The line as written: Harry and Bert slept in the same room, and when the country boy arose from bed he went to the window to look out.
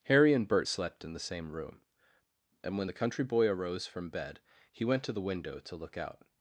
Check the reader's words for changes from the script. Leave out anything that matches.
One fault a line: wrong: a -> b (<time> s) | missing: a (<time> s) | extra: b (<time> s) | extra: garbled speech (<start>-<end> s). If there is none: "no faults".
no faults